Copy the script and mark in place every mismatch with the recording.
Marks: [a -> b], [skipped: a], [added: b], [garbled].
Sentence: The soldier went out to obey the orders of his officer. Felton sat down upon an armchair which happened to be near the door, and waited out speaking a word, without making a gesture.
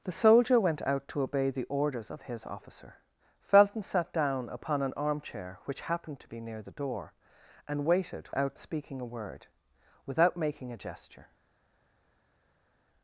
The soldier went out to obey the orders of his officer. Felton sat down upon an armchair which happened to be near the door, and waited out speaking a word, without making a gesture.